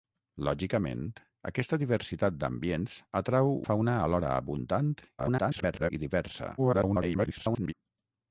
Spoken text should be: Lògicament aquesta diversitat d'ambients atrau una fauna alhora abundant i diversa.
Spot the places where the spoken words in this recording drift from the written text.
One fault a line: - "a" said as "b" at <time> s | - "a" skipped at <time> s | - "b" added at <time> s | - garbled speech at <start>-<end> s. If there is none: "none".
- "una" skipped at 3.5 s
- garbled speech at 5.2-5.9 s
- garbled speech at 6.6-7.7 s